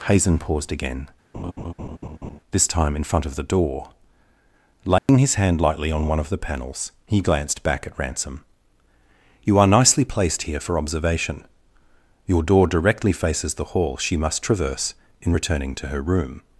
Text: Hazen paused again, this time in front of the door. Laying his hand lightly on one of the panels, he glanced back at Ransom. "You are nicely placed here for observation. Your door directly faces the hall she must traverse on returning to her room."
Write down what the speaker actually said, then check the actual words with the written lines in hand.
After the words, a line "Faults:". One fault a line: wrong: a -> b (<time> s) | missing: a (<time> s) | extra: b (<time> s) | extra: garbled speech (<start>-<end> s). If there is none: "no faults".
Hazen paused again, this time in front of the door. Laying his hand lightly on one of the panels, he glanced back at Ransom. "You are nicely placed here for observation. Your door directly faces the hall she must traverse in returning to her room."
Faults:
wrong: on -> in (15.2 s)